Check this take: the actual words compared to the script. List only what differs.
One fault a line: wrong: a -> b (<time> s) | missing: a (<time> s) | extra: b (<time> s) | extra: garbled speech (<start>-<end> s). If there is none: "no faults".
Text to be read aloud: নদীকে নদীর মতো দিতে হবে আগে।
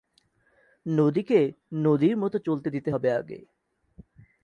extra: চলতে (2.4 s)